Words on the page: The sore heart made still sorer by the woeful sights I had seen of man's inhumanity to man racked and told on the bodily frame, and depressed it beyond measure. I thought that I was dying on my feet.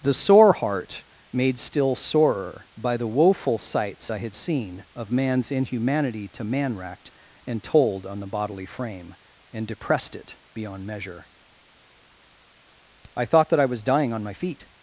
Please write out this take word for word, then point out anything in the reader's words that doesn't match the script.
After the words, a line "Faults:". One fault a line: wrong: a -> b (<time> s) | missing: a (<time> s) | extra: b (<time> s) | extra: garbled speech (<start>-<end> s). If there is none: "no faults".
The sore heart made still sorer by the woeful sights I had seen of man's inhumanity to man racked and told on the bodily frame, and depressed it beyond measure. I thought that I was dying on my feet.
Faults:
no faults